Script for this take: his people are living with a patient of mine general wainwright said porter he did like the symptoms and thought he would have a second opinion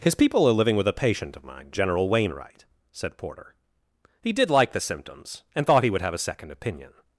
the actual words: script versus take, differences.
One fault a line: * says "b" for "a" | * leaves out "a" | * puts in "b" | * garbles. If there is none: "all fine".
all fine